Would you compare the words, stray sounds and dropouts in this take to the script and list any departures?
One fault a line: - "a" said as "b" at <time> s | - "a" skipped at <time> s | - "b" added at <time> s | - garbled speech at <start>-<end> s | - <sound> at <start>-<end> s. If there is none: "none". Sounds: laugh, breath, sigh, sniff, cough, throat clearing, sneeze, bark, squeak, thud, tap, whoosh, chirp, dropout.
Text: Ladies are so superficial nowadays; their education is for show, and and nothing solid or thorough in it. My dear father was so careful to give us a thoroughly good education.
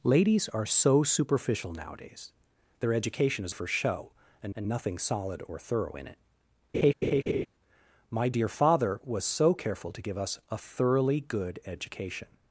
- laugh at 6.7-7.5 s